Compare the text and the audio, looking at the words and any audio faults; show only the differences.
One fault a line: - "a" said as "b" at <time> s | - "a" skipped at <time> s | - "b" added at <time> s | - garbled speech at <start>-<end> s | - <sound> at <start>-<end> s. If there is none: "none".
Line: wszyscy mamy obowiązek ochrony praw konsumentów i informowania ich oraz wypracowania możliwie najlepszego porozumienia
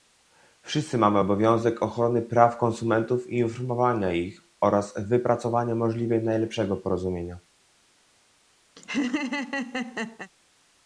- laugh at 8.8-10.3 s